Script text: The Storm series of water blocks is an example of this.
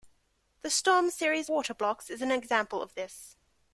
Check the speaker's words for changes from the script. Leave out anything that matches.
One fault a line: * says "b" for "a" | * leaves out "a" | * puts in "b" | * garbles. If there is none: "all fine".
* leaves out "of"